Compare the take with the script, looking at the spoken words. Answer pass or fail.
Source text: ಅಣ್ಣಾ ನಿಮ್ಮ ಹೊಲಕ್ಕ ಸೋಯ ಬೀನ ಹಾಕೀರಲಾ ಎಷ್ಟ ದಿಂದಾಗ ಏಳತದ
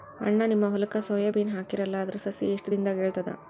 fail